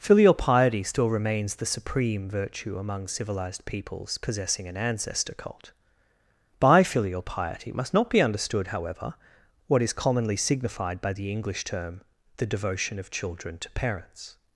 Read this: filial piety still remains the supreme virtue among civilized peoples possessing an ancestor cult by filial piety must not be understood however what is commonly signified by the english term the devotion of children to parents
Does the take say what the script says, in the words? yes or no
yes